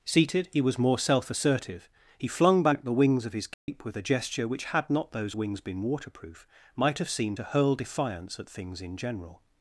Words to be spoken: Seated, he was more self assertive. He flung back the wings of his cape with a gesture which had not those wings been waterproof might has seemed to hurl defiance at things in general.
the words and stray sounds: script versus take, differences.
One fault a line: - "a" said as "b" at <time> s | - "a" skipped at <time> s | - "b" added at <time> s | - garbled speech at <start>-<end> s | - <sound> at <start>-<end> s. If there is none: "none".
- dropout at 3.5-3.7 s
- "has" said as "have" at 7.0 s